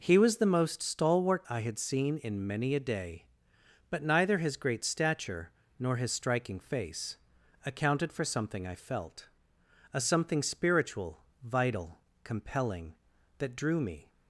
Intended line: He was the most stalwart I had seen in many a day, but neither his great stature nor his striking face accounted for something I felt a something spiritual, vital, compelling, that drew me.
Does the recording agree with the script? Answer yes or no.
yes